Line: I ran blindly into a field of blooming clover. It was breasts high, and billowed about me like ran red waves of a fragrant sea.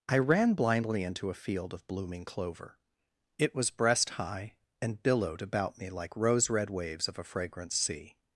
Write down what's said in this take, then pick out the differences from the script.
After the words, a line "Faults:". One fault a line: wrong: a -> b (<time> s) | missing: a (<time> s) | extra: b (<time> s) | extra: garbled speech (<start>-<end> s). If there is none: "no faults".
I ran blindly into a field of blooming clover. It was breast high, and billowed about me like rose red waves of a fragrant sea.
Faults:
wrong: breasts -> breast (3.7 s)
wrong: ran -> rose (6.2 s)